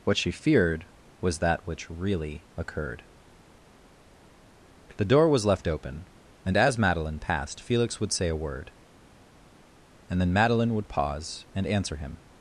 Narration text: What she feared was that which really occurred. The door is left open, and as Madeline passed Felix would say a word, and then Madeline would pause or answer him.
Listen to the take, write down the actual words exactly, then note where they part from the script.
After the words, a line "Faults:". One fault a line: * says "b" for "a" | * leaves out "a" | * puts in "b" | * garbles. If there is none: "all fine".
What she feared was that which really occurred. The door was left open, and as Madeline passed Felix would say a word, and then Madeline would pause and answer him.
Faults:
* says "was" for "is"
* says "and" for "or"